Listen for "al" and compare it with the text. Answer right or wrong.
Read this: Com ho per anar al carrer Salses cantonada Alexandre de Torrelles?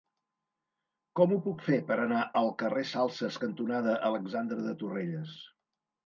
right